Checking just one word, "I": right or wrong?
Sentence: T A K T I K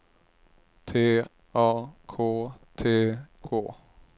wrong